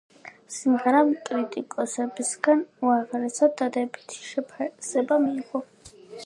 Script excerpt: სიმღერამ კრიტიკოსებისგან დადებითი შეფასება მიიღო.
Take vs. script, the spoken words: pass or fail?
fail